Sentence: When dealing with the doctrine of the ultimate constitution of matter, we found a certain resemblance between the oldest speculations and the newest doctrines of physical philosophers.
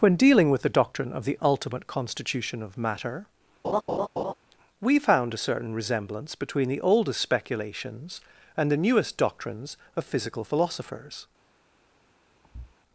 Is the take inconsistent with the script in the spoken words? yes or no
no